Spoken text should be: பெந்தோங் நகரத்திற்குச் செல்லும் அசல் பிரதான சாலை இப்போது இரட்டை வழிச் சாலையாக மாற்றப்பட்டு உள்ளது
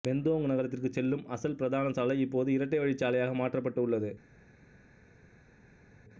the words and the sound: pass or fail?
pass